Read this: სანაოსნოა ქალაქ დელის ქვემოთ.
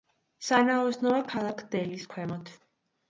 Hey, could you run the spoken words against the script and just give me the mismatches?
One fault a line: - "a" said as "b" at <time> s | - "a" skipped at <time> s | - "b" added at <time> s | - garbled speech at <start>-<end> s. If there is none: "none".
none